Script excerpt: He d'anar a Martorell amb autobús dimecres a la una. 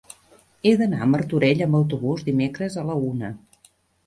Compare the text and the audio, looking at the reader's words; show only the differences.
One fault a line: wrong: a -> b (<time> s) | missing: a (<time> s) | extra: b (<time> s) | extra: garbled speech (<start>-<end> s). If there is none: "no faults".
no faults